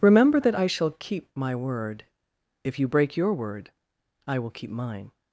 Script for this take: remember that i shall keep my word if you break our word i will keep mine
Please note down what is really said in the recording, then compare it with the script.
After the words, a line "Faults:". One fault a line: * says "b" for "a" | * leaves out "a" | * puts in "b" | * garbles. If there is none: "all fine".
remember that i shall keep my word if you break your word i will keep mine
Faults:
* says "your" for "our"